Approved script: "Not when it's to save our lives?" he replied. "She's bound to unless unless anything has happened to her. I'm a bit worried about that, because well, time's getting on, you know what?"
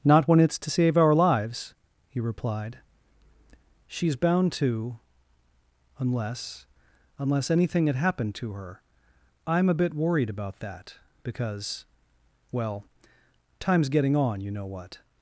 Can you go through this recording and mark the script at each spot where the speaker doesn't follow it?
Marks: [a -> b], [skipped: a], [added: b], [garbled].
"Not when it's to save our lives?" he replied. "She's bound to unless unless anything [has -> had] happened to her. I'm a bit worried about that, because well, time's getting on, you know what?"